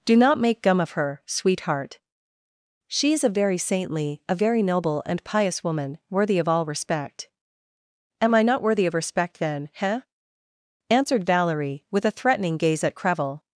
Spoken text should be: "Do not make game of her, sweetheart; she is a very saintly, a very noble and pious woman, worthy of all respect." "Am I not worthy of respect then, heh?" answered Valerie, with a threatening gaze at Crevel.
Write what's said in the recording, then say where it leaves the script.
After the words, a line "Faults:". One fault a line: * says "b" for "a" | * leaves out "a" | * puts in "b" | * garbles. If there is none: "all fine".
"Do not make gum of her, sweetheart; she is a very saintly, a very noble and pious woman, worthy of all respect." "Am I not worthy of respect then, heh?" answered Valerie, with a threatening gaze at Crevel.
Faults:
* says "gum" for "game"